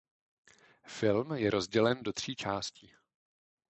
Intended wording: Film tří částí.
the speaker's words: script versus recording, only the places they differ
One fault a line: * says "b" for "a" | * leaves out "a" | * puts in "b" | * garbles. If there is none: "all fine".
* puts in "je rozdělen do"